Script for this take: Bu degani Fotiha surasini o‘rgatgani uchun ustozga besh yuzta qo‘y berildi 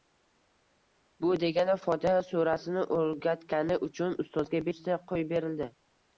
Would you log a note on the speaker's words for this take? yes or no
yes